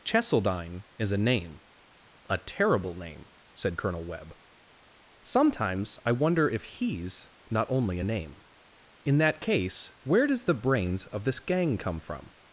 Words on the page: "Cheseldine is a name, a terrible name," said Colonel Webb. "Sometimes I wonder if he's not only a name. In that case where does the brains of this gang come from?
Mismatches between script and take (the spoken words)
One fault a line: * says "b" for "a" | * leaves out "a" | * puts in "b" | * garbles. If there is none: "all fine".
all fine